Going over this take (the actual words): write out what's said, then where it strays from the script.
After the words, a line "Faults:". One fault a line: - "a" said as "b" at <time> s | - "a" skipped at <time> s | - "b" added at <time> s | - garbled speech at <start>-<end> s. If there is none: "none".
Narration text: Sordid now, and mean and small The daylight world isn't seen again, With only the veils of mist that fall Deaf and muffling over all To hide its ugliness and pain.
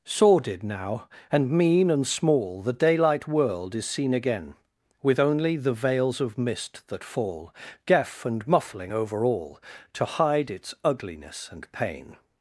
Sordid now, and mean and small The daylight world is seen again, With only the veils of mist that fall Deaf and muffling over all To hide its ugliness and pain.
Faults:
- "isn't" said as "is" at 3.8 s